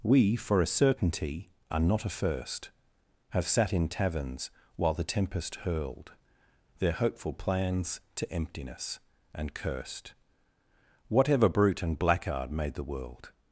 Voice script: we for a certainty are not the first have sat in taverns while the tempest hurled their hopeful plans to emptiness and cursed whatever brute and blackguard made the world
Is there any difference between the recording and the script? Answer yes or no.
yes